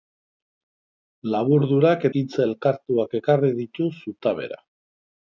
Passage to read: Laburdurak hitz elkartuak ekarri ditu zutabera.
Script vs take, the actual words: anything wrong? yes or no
no